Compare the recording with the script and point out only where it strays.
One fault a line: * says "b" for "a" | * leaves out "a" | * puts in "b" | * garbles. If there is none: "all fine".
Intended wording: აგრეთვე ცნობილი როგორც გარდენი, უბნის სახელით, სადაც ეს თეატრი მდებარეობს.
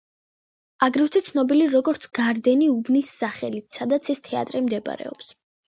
all fine